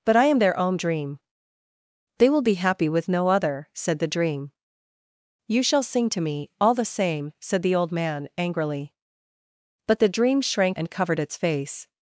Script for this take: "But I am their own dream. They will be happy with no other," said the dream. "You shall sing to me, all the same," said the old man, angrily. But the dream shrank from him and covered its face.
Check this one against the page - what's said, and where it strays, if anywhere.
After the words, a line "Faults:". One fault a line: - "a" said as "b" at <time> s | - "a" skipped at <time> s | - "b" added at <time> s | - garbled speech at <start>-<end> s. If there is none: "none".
"But I am their own dream. They will be happy with no other," said the dream. "You shall sing to me, all the same," said the old man, angrily. But the dream shrank and covered its face.
Faults:
- "from him" skipped at 10.8 s